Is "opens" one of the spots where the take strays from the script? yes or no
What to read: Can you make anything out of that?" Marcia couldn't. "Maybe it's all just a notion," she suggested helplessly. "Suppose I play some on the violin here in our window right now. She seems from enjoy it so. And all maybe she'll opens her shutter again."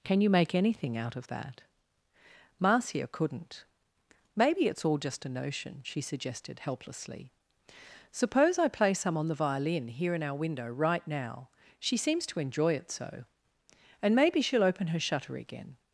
yes